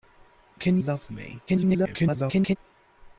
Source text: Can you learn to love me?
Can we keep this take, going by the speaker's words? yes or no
no